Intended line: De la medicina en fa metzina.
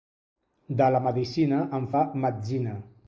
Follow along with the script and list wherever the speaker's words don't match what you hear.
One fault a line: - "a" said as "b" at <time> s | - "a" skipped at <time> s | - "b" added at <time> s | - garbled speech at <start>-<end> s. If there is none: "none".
none